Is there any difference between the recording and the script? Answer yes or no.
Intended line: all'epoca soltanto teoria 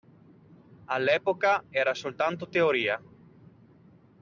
yes